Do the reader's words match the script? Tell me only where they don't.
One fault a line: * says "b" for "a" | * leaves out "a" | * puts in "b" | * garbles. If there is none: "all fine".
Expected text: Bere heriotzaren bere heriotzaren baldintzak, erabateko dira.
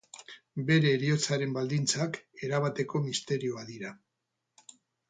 * leaves out "bere heriotzaren"
* puts in "misterioa"